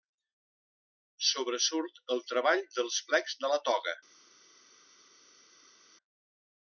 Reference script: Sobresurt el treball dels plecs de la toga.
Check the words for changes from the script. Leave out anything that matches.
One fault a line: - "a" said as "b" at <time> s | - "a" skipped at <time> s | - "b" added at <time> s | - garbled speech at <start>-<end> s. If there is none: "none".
none